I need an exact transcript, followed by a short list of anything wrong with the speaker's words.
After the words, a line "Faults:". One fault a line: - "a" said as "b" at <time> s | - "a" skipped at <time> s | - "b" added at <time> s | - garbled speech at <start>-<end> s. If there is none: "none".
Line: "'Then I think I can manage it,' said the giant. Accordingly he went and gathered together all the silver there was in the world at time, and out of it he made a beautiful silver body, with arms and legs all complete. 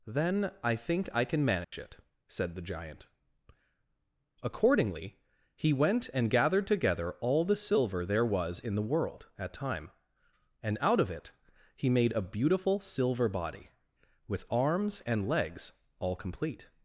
"'Then I think I can manage it,' said the giant. Accordingly he went and gathered together all the silver there was in the world at time, and out of it he made a beautiful silver body, with arms and legs all complete.
Faults:
none